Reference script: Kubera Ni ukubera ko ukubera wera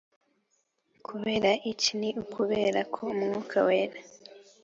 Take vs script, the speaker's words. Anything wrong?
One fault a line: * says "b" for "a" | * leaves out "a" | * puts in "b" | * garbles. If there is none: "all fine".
* puts in "iki"
* says "umwuka" for "ukubera"